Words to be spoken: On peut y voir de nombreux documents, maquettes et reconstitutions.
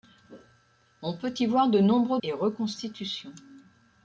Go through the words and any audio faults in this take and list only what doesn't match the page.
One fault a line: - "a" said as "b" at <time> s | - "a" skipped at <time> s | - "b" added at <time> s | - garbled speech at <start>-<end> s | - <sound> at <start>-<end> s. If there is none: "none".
- "documents maquettes" skipped at 2.2 s